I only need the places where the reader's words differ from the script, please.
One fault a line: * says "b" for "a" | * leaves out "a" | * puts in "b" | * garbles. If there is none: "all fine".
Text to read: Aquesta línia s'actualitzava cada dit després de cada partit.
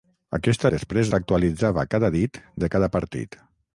* says "després" for "línia"
* leaves out "després"